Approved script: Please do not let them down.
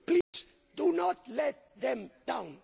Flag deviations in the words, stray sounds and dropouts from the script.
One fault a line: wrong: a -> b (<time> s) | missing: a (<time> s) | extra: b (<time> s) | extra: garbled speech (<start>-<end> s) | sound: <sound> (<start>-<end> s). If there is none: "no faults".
sound: dropout (0.2-0.3 s)